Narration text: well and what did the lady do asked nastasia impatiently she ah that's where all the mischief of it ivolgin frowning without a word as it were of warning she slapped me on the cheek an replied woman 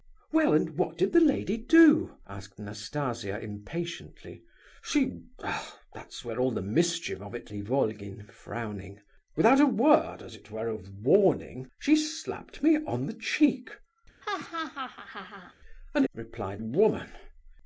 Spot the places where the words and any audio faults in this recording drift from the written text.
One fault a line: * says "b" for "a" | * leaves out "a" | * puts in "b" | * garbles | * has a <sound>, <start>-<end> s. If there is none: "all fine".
* has a laugh, 14.2-15.5 s